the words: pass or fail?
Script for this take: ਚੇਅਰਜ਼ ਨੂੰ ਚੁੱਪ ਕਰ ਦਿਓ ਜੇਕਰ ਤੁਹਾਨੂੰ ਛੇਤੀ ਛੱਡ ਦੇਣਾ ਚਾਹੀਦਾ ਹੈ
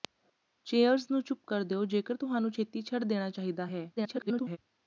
fail